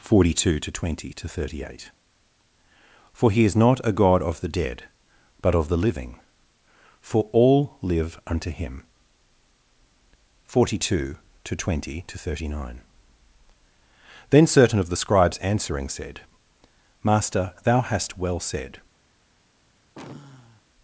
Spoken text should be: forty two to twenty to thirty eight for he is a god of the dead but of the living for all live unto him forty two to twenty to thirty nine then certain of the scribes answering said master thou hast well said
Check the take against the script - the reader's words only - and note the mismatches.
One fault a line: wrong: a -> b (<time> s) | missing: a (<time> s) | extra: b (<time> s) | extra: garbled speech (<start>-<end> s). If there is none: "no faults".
extra: not (3.5 s)